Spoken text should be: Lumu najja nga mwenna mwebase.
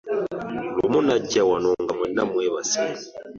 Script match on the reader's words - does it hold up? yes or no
no